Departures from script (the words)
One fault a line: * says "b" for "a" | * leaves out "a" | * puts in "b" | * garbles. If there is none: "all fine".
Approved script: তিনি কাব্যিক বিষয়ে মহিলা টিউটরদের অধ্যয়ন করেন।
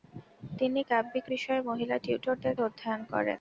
all fine